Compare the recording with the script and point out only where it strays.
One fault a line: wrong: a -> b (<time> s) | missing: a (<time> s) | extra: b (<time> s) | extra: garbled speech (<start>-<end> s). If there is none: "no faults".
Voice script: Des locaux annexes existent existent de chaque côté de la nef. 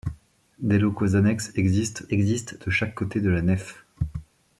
no faults